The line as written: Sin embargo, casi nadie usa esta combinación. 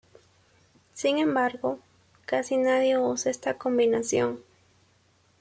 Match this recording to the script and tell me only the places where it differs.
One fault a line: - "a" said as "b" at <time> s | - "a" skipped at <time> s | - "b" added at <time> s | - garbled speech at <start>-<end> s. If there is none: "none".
none